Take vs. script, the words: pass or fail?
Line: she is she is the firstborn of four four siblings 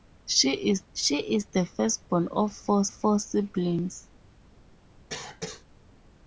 pass